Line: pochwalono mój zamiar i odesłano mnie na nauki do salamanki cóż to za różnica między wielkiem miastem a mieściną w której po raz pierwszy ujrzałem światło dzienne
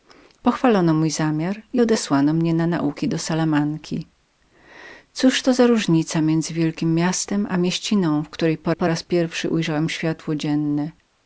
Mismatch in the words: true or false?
true